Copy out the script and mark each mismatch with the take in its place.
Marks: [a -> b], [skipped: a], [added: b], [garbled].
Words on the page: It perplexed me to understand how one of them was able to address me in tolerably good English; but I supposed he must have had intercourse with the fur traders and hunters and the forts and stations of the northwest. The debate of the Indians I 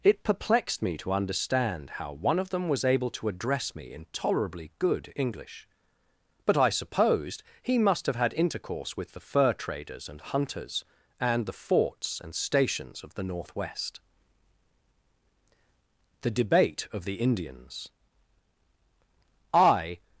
It perplexed me to understand how one of them was able to address me in tolerably good English; but I supposed he must have had intercourse with the fur traders and hunters and the forts and stations of the northwest. The debate of the Indians I